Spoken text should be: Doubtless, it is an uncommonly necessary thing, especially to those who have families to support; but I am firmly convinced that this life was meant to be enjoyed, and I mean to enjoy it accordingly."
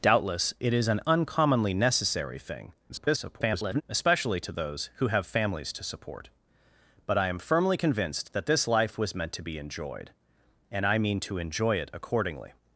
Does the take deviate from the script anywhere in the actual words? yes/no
yes